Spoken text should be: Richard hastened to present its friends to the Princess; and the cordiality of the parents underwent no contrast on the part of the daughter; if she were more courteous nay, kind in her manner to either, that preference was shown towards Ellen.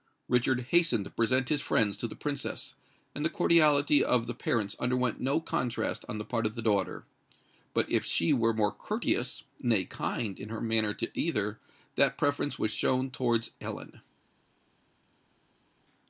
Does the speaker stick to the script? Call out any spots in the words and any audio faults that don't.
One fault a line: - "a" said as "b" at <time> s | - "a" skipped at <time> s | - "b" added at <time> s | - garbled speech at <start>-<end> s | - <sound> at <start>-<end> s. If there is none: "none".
- "its" said as "his" at 1.5 s
- "but" added at 7.8 s